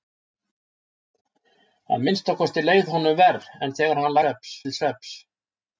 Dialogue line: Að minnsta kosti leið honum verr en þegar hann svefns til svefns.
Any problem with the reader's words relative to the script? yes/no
no